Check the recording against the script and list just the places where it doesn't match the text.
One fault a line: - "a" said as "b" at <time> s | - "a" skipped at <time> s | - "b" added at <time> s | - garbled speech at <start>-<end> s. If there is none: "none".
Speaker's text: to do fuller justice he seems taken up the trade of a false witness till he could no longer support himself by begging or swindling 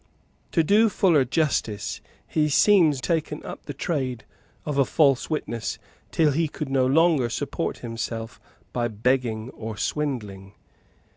none